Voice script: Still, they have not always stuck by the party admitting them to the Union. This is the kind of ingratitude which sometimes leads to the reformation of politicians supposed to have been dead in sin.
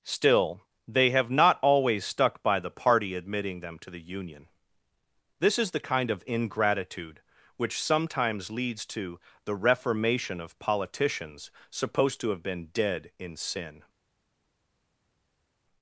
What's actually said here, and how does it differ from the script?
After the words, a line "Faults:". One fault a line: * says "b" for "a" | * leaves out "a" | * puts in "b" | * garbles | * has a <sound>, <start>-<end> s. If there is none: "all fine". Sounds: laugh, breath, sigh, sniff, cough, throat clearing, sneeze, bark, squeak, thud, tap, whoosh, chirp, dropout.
Still, they have not always stuck by the party admitting them to the Union. This is the kind of ingratitude which sometimes leads to the reformation of politicians supposed to have been dead in sin.
Faults:
all fine